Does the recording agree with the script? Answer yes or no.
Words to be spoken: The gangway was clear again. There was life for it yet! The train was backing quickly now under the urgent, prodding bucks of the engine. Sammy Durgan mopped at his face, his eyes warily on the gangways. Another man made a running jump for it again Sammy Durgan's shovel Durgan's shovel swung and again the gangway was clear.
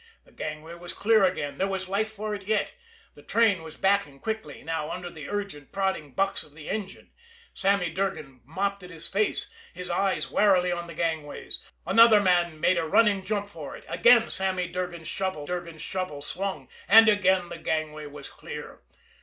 yes